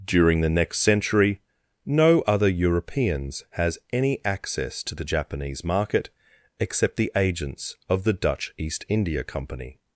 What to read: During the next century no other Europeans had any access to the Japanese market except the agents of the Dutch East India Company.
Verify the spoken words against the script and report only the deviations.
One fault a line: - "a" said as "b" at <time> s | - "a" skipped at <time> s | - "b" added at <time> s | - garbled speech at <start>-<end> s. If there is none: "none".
- "had" said as "has" at 3.5 s